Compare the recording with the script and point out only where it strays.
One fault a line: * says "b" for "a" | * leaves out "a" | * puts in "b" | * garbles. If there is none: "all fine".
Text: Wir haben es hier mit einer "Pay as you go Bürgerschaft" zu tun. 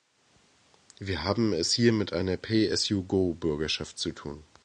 all fine